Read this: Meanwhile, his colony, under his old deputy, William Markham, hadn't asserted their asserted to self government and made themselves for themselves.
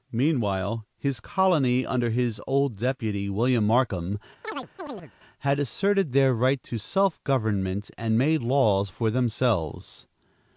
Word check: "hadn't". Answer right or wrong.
wrong